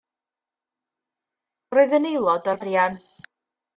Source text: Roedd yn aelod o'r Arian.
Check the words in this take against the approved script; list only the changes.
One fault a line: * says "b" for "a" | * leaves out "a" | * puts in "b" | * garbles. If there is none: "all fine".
all fine